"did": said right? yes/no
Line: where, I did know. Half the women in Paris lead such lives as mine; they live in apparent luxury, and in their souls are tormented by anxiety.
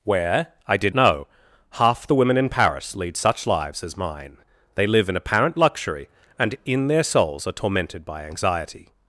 yes